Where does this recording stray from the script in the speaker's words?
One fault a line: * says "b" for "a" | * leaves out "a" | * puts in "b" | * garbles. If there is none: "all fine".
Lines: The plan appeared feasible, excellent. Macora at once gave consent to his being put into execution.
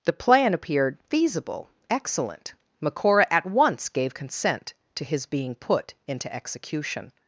all fine